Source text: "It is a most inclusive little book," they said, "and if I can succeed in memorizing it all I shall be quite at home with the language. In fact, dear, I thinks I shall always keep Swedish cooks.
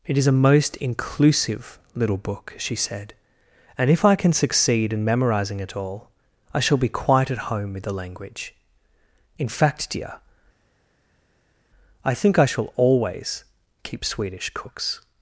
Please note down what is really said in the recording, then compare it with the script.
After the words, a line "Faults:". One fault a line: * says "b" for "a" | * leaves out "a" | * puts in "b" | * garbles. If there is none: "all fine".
"It is a most inclusive little book," she said, "and if I can succeed in memorizing it all I shall be quite at home with the language. In fact, dear, I think I shall always keep Swedish cooks.
Faults:
* says "she" for "they"
* says "think" for "thinks"